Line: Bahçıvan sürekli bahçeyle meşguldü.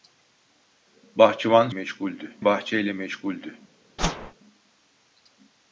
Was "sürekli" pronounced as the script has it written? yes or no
no